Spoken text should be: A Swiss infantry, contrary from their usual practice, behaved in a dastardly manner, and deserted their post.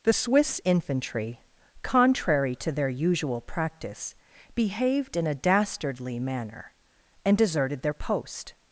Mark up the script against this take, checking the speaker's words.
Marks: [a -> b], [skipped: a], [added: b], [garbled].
[A -> The] Swiss infantry, contrary [from -> to] their usual practice, behaved in a dastardly manner, and deserted their post.